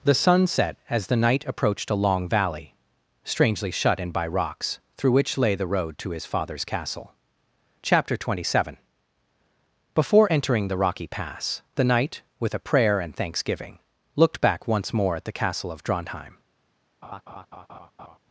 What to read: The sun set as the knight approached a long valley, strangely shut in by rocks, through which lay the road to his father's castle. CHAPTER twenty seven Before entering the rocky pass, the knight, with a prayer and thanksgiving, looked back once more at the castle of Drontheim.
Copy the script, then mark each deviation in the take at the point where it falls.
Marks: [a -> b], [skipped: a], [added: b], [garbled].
The sun set as the knight approached a long valley, strangely shut in by rocks, through which lay the road to his father's castle. CHAPTER twenty seven Before entering the rocky pass, the knight, with a prayer and thanksgiving, looked back once more at the castle of Drontheim.